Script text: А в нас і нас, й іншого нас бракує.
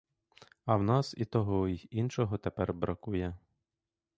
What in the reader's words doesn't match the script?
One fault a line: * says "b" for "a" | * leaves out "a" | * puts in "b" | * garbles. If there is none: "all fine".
* says "того" for "нас"
* says "тепер" for "нас"